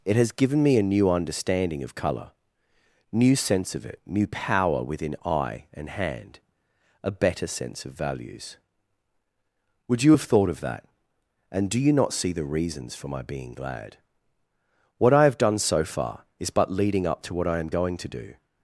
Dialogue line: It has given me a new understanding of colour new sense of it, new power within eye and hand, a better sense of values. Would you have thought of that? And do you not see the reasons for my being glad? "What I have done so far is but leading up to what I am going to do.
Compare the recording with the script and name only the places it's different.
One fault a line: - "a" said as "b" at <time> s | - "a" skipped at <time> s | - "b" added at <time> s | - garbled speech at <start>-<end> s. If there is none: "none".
none